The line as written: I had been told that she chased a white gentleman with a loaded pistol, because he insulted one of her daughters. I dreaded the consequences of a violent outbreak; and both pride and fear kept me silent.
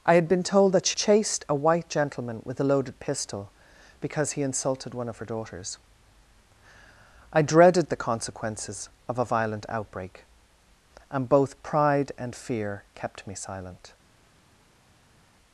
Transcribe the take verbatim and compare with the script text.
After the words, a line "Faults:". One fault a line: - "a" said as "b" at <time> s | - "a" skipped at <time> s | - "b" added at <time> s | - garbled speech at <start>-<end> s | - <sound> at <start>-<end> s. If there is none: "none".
I had been told that she chased a white gentleman with a loaded pistol, because he insulted one of her daughters. I dreaded the consequences of a violent outbreak; and both pride and fear kept me silent.
Faults:
none